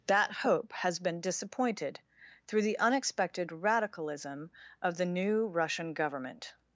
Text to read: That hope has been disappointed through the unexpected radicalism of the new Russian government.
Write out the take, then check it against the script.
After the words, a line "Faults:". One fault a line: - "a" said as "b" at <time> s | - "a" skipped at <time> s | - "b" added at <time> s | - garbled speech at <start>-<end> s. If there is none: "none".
That hope has been disappointed through the unexpected radicalism of the new Russian government.
Faults:
none